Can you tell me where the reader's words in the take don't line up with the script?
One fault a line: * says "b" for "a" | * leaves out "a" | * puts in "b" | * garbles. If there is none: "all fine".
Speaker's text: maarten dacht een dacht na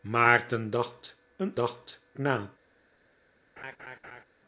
all fine